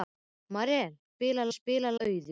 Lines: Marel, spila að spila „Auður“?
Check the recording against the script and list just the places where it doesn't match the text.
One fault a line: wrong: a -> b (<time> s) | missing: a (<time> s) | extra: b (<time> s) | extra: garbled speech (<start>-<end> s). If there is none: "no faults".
no faults